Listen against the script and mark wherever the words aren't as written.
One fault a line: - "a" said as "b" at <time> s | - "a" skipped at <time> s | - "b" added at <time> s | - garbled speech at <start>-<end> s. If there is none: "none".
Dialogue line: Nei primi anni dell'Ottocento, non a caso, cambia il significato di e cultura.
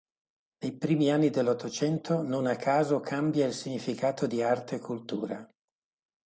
- "arte" added at 4.4 s